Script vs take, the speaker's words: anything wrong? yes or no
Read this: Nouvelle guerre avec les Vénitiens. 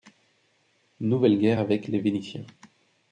no